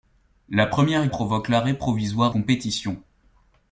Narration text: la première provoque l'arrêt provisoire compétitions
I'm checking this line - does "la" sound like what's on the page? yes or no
yes